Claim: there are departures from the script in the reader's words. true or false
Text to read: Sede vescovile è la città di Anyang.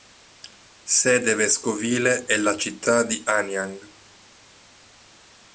false